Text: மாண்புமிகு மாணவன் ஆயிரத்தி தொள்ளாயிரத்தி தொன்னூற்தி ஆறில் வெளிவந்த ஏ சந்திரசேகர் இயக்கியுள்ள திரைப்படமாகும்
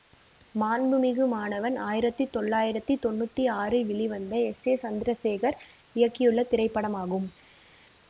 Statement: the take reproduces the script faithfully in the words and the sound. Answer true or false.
false